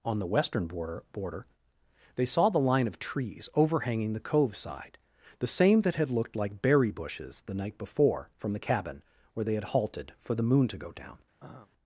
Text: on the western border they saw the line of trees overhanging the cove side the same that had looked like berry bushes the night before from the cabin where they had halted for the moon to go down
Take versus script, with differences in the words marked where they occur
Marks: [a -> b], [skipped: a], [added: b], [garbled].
on the western border [added: border] they saw the line of trees overhanging the cove side the same that had looked like berry bushes the night before from the cabin where they had halted for the moon to go down